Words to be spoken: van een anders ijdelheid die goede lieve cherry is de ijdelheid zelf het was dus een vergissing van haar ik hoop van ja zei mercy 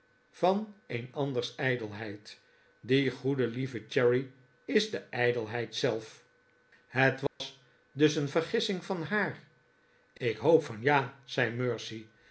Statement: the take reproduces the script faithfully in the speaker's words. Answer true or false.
true